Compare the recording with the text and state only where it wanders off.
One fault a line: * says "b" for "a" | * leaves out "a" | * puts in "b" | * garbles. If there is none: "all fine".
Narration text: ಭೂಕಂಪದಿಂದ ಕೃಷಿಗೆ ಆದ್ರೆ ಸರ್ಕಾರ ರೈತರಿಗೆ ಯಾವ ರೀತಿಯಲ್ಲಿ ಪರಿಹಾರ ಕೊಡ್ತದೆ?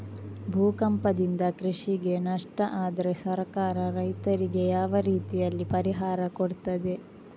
* puts in "ನಷ್ಟ"